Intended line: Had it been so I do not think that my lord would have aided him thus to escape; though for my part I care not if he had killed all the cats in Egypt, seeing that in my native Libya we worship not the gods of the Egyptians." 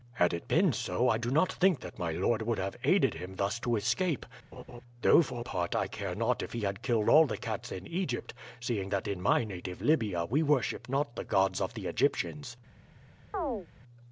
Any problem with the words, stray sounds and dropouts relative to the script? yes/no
yes